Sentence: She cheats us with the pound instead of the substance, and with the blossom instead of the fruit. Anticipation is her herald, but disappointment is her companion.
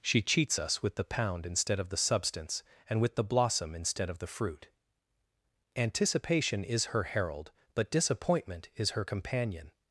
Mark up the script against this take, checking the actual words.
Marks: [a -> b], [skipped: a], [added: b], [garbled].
She cheats us with the pound instead of the substance, and with the blossom instead of the fruit. Anticipation is her herald, but disappointment is her companion.